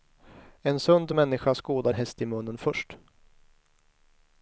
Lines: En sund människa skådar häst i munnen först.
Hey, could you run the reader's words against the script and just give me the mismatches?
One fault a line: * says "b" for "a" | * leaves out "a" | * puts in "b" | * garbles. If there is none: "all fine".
all fine